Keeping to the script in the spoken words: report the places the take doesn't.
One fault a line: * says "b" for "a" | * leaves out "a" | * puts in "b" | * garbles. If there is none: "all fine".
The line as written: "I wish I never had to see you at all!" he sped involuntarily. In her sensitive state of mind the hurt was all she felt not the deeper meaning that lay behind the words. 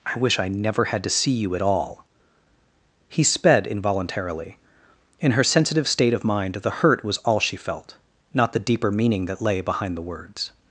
all fine